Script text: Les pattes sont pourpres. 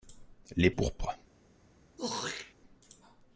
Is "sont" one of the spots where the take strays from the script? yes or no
yes